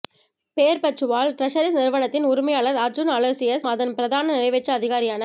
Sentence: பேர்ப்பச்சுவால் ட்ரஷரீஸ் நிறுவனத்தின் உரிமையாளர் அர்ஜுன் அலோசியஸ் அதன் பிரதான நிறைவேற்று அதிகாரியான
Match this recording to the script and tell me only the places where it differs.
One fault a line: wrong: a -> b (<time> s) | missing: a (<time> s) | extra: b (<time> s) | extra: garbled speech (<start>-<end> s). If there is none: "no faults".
no faults